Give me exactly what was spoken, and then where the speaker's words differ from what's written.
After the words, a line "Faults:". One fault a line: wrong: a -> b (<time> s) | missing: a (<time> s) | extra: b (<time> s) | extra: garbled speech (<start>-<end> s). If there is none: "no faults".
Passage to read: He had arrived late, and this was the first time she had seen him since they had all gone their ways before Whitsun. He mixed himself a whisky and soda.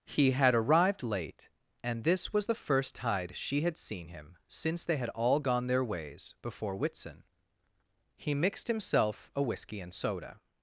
He had arrived late, and this was the first tide she had seen him since they had all gone their ways before Whitsun. He mixed himself a whisky and soda.
Faults:
wrong: time -> tide (2.9 s)